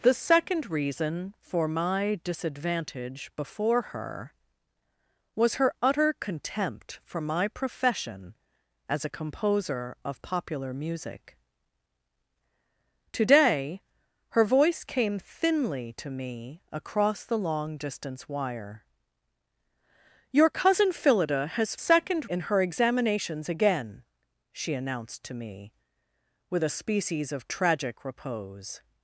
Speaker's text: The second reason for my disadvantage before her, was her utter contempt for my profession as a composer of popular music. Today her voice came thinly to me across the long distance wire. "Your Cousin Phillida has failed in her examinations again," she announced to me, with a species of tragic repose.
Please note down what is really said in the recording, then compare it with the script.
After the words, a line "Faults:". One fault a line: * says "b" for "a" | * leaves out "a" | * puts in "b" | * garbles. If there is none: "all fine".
The second reason for my disadvantage before her, was her utter contempt for my profession as a composer of popular music. Today her voice came thinly to me across the long distance wire. "Your Cousin Phillida has second in her examinations again," she announced to me, with a species of tragic repose.
Faults:
* says "second" for "failed"